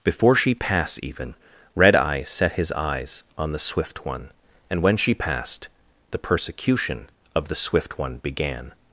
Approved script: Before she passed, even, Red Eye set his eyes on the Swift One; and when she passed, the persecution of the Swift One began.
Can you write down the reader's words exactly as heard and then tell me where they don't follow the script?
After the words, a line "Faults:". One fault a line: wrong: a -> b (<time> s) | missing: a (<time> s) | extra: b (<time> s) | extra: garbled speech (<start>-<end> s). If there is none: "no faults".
Before she pass, even, Red Eye set his eyes on the Swift One; and when she passed, the persecution of the Swift One began.
Faults:
wrong: passed -> pass (0.6 s)